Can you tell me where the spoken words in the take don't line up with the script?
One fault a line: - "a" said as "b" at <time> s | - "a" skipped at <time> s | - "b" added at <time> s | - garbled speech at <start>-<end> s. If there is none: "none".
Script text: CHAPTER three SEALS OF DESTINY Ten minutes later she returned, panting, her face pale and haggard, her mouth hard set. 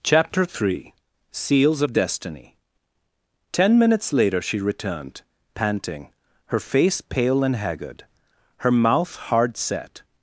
none